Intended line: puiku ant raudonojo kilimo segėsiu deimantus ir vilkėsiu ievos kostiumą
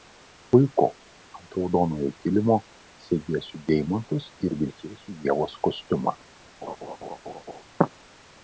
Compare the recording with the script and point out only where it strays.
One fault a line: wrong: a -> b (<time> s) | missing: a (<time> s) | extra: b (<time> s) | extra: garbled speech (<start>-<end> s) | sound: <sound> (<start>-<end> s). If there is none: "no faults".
sound: laugh (6.6-7.6 s)